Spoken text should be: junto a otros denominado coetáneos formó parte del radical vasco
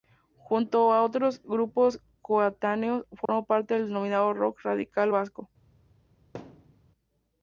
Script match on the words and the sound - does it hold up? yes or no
no